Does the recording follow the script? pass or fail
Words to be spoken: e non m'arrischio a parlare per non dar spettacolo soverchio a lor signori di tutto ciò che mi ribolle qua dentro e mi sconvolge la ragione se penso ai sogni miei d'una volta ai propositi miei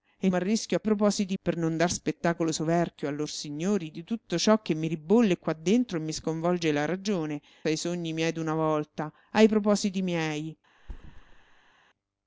fail